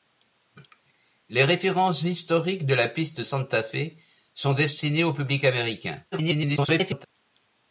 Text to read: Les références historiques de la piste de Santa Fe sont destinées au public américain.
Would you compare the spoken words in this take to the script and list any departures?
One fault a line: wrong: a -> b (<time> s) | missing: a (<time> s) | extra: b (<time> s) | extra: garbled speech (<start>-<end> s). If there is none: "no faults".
missing: de (3.2 s)
extra: garbled speech (6.1-7.0 s)